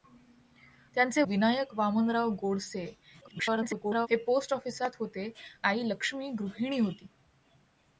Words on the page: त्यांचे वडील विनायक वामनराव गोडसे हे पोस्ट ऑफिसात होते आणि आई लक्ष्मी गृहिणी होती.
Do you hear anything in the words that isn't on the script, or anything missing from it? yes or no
yes